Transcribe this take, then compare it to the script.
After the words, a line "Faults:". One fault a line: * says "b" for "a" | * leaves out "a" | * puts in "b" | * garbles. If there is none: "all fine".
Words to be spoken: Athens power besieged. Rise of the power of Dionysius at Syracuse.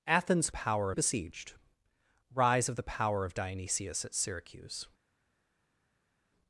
Athens power besieged. Rise of the power of Dionysius at Syracuse.
Faults:
all fine